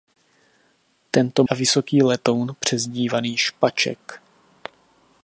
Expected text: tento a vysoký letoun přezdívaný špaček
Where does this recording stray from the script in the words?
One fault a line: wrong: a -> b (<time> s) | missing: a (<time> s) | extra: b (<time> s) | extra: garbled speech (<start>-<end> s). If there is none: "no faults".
no faults